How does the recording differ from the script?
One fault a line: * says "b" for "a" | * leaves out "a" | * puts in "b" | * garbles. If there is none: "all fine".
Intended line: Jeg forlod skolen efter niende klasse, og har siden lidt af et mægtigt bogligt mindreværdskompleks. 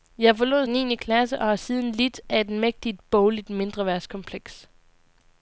* leaves out "skolen efter"